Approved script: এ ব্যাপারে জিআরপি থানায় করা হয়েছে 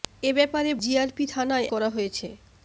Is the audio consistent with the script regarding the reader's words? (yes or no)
yes